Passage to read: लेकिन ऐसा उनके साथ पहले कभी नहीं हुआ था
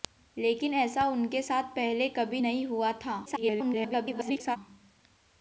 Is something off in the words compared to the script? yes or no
yes